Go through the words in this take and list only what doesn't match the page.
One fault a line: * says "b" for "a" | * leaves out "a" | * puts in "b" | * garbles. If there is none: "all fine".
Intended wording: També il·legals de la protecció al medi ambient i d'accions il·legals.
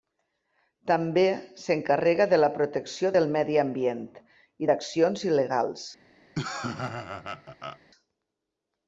* says "s'encarrega" for "il·legals"
* says "del" for "al"